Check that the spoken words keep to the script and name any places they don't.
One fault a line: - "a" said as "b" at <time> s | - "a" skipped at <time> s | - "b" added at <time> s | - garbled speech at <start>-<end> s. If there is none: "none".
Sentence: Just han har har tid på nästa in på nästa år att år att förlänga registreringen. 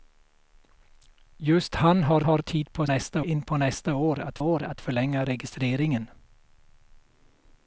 none